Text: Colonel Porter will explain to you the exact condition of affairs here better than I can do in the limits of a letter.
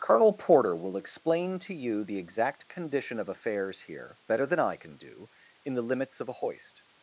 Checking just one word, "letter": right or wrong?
wrong